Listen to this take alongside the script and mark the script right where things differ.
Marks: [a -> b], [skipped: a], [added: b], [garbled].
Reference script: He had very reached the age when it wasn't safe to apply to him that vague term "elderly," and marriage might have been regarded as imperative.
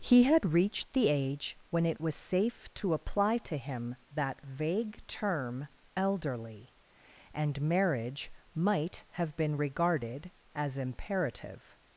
He had [skipped: very] reached the age when it [wasn't -> was] safe to apply to him that vague term "elderly," and marriage might have been regarded as imperative.